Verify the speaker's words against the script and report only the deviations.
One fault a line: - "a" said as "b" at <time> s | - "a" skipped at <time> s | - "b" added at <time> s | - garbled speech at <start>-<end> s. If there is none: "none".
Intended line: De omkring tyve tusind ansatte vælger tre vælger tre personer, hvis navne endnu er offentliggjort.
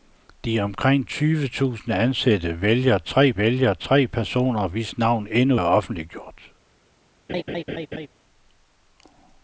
none